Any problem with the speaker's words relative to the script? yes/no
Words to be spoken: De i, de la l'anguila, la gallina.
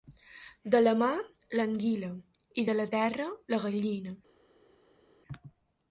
yes